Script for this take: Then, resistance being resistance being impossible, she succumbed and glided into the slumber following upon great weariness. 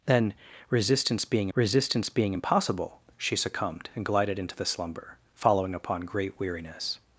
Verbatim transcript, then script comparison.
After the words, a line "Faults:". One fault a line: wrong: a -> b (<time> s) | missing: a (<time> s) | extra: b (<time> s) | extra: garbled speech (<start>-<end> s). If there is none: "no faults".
Then, resistance being resistance being impossible, she succumbed and glided into the slumber following upon great weariness.
Faults:
no faults